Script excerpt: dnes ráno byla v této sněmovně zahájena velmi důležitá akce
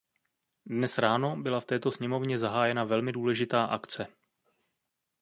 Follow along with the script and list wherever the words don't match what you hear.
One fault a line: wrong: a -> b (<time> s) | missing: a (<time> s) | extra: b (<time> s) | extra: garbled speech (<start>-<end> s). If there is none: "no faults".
no faults